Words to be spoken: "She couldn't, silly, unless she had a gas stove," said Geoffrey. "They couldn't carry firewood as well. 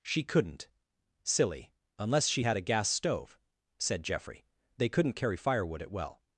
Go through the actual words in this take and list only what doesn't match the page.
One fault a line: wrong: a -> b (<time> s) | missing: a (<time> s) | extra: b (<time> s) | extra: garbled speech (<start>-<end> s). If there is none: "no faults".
wrong: as -> at (5.8 s)